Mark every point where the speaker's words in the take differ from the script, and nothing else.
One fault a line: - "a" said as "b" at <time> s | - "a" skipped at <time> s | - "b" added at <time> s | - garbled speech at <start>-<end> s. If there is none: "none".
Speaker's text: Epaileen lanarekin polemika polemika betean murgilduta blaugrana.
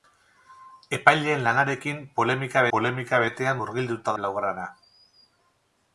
none